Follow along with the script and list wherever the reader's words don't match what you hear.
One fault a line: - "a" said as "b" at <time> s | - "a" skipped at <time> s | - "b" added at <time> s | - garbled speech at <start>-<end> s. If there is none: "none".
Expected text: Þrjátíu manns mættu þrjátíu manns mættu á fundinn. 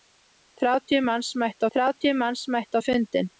none